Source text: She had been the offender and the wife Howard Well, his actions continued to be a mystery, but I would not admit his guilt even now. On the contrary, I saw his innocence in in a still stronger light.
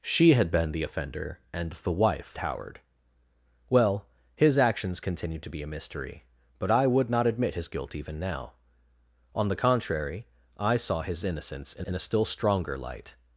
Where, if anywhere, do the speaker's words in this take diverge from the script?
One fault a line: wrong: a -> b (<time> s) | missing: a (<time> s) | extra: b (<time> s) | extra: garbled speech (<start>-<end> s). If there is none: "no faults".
no faults